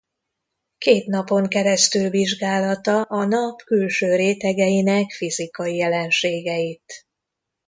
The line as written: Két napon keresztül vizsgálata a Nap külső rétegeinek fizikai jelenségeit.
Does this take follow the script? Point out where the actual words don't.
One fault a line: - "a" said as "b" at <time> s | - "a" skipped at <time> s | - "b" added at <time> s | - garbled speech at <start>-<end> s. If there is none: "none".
none